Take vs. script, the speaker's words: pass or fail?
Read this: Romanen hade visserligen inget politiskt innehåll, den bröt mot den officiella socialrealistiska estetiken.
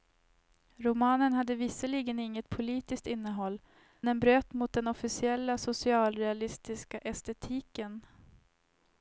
pass